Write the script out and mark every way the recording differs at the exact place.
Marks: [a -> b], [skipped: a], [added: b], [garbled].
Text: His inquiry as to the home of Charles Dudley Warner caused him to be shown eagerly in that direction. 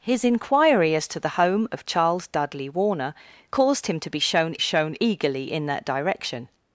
His inquiry as to the home of Charles Dudley Warner caused him to be shown [added: shown] eagerly in that direction.